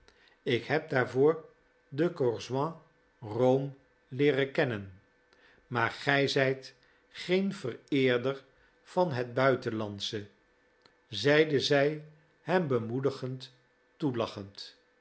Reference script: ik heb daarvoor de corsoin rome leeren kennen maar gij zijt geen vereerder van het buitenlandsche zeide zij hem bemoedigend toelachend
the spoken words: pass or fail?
pass